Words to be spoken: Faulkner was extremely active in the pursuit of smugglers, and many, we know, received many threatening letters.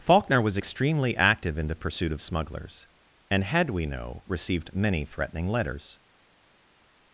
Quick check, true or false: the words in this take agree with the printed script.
false